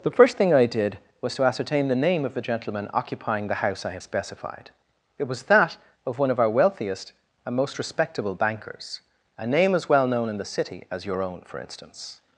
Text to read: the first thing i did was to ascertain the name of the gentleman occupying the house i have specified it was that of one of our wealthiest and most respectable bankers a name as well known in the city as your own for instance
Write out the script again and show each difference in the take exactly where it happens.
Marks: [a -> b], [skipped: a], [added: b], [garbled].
the first thing i did was to ascertain the name of the gentleman occupying the house i have specified it was that of one of our wealthiest and most respectable bankers a name as well known in the city as your own for instance